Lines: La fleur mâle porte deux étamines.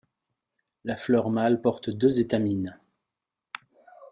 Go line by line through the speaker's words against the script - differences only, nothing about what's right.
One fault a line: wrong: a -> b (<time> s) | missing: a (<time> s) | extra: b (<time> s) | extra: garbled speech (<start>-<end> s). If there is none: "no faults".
no faults